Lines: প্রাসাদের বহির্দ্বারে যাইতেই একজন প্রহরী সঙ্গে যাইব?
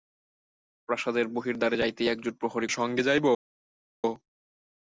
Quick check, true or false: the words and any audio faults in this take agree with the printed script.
true